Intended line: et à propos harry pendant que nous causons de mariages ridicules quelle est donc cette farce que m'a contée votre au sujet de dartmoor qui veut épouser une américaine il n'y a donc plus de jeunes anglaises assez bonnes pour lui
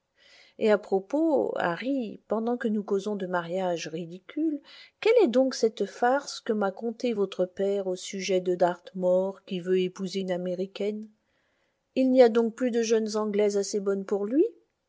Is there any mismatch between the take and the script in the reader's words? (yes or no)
yes